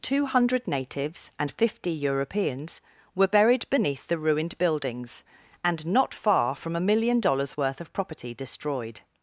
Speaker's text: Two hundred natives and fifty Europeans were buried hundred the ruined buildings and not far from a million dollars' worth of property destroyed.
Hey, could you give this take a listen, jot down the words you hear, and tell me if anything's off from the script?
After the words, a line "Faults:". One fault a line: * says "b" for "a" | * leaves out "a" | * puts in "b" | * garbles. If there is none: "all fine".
Two hundred natives and fifty Europeans were buried beneath the ruined buildings and not far from a million dollars' worth of property destroyed.
Faults:
* says "beneath" for "hundred"